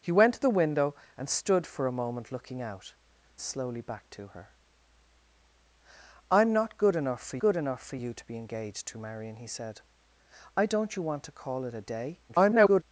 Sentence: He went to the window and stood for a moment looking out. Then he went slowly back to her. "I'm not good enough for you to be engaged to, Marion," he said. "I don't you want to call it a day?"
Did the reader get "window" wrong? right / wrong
right